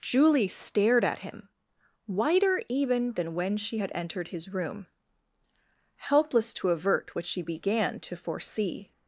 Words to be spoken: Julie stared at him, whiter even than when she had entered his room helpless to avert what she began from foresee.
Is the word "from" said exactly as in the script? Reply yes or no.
no